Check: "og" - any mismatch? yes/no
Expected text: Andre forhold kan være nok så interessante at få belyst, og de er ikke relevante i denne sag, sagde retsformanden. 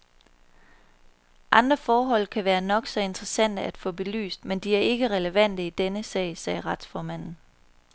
yes